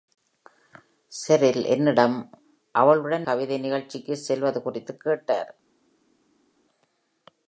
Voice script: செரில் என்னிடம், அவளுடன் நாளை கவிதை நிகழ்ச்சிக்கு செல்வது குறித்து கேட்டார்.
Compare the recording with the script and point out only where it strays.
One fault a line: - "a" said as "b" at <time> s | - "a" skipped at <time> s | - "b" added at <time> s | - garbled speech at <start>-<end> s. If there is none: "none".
- "நாளை" skipped at 3.3 s